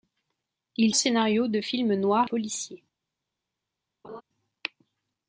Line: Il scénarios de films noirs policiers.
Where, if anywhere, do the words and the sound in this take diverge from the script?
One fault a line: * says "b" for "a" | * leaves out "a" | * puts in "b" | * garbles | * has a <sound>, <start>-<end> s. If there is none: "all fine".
* has a laugh, 4.0-4.2 s